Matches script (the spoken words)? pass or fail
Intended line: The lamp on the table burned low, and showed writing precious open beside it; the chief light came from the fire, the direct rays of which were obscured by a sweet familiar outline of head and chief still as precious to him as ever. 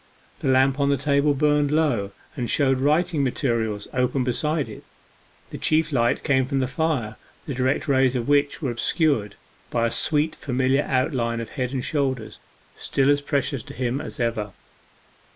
fail